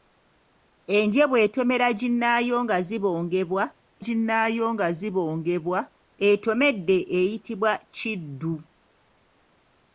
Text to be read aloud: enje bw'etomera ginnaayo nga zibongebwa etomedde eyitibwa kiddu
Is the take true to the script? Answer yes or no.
no